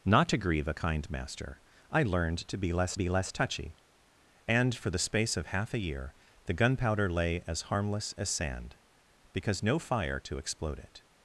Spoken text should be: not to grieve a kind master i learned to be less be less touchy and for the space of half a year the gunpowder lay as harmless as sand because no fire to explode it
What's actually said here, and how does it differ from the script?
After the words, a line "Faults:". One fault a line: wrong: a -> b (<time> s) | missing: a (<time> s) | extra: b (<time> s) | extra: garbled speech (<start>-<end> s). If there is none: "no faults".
not to grieve a kind master i learned to be less be less touchy and for the space of half a year the gunpowder lay as harmless as sand because no fire to explode it
Faults:
no faults